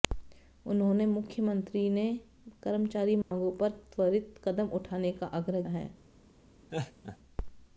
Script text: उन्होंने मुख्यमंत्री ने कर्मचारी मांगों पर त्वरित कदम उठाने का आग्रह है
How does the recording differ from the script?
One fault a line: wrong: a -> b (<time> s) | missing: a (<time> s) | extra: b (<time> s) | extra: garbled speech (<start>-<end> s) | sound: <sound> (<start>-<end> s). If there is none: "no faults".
sound: dropout (3.2-3.3 s)
sound: laugh (6.7-7.2 s)